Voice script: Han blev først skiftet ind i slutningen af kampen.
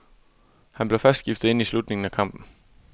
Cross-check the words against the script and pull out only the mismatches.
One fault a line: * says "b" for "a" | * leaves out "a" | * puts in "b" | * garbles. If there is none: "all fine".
all fine